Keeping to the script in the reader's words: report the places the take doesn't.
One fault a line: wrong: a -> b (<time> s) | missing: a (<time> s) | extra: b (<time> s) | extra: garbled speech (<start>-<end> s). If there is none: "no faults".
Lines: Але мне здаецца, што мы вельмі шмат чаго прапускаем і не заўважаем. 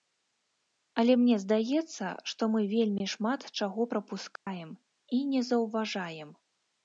no faults